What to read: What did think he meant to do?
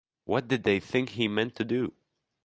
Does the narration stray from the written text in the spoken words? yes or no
yes